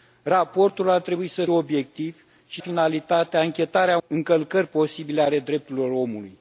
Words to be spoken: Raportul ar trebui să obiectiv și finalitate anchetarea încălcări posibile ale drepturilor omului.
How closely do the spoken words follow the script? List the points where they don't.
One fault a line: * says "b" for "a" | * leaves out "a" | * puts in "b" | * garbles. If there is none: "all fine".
all fine